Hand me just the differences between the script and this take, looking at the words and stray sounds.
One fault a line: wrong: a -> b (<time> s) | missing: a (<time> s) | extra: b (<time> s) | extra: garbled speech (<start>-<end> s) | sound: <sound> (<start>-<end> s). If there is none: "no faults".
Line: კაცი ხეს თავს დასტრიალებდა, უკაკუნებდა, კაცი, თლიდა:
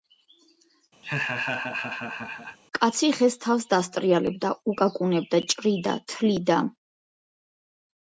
sound: laugh (1.0-2.6 s)
wrong: კაცი -> ჭრიდა (5.5 s)